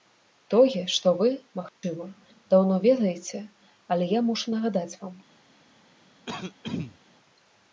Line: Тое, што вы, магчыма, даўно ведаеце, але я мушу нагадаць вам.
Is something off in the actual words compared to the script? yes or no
no